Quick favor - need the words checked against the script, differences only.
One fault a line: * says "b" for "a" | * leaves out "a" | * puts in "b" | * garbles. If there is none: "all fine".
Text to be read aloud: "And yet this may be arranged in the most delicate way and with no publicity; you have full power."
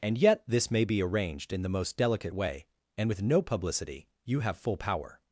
all fine